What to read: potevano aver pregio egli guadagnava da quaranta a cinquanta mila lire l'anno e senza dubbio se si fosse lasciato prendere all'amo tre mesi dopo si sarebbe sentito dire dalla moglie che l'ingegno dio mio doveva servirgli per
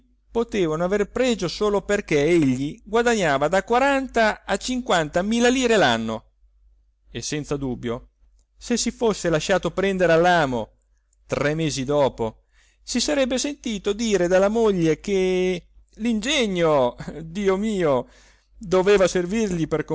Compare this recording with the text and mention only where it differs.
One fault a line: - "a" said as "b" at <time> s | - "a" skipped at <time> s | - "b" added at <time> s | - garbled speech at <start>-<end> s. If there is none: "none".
- "solo perché" added at 1.5 s